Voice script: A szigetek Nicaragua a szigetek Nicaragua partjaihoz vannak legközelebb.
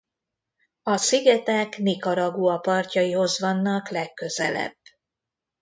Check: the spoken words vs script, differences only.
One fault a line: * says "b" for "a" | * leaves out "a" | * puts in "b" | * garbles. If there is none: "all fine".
* leaves out "a szigetek Nicaragua"